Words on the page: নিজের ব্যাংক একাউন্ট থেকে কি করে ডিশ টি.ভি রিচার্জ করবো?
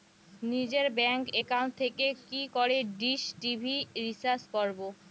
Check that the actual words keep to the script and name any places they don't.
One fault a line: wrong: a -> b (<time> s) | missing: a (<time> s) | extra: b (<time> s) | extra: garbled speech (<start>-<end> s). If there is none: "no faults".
no faults